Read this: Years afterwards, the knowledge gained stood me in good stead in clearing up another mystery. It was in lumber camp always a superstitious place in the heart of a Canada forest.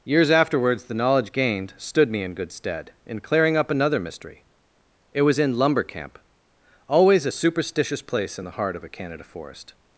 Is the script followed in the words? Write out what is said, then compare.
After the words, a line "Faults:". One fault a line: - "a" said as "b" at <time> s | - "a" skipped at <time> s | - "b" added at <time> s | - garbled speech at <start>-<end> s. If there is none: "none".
Years afterwards, the knowledge gained stood me in good stead in clearing up another mystery. It was in lumber camp always a superstitious place in the heart of a Canada forest.
Faults:
none